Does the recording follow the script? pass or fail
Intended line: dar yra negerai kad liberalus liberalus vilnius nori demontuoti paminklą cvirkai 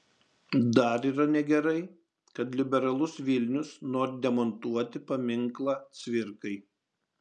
fail